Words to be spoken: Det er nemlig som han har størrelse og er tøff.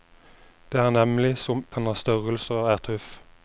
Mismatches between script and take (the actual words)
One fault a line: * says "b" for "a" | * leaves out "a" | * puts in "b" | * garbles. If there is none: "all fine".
all fine